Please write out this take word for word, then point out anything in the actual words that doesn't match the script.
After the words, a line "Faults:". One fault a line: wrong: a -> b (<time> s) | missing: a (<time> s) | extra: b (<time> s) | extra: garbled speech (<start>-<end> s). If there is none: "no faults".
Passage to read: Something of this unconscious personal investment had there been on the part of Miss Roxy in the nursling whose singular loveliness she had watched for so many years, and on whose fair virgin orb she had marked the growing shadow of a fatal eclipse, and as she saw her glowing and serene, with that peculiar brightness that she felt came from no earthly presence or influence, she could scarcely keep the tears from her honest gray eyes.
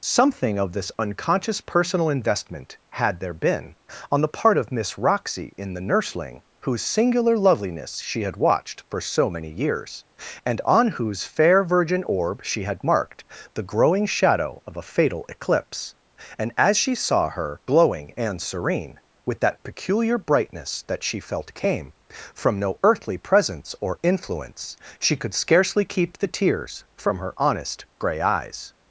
Something of this unconscious personal investment had there been on the part of Miss Roxy in the nursling whose singular loveliness she had watched for so many years, and on whose fair virgin orb she had marked the growing shadow of a fatal eclipse, and as she saw her glowing and serene, with that peculiar brightness that she felt came from no earthly presence or influence, she could scarcely keep the tears from her honest gray eyes.
Faults:
no faults